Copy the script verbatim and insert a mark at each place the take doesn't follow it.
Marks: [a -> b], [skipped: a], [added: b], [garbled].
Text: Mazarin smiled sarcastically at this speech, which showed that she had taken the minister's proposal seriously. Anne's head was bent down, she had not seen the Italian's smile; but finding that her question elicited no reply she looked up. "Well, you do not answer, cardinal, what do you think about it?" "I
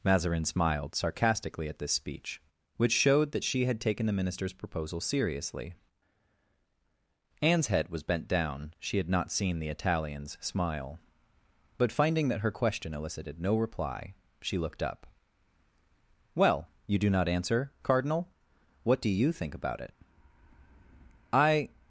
Mazarin smiled sarcastically at this speech, which showed that she had taken the minister's proposal seriously. Anne's head was bent down, she had not seen the Italian's smile; but finding that her question elicited no reply she looked up. "Well, you do not answer, cardinal, what do you think about it?" "I